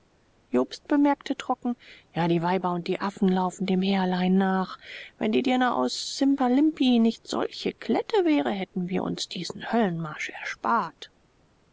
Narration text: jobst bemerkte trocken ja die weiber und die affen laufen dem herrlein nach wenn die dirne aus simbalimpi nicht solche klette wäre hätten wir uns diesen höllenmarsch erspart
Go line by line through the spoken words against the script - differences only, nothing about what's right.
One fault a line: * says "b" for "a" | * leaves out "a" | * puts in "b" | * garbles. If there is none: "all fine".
all fine